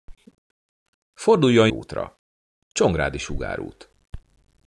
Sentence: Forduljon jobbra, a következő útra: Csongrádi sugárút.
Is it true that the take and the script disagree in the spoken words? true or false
true